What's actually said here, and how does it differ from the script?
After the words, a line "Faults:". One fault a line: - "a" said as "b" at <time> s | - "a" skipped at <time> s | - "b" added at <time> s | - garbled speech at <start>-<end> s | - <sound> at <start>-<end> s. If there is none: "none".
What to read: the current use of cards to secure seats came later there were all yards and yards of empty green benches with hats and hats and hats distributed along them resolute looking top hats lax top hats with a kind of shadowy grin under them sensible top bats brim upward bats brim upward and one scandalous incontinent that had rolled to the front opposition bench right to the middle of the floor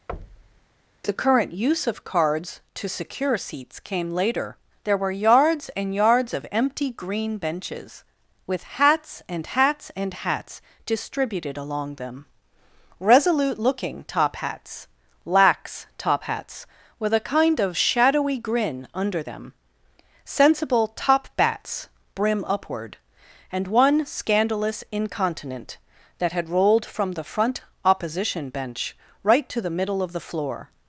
the current use of cards to secure seats came later there were yards and yards of empty green benches with hats and hats and hats distributed along them resolute looking top hats lax top hats with a kind of shadowy grin under them sensible top bats brim upward and one scandalous incontinent that had rolled from the front opposition bench right to the middle of the floor
Faults:
- thud at 0.1-0.7 s
- "all" skipped at 5.1 s
- "bats brim upward" skipped at 23.0 s
- "to" said as "from" at 26.8 s